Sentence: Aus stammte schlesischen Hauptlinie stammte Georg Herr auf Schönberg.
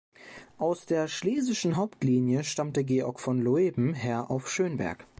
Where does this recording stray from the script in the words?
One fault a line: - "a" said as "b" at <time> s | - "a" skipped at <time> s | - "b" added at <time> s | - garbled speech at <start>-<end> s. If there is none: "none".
- "stammte" said as "der" at 0.8 s
- "von Loeben" added at 3.2 s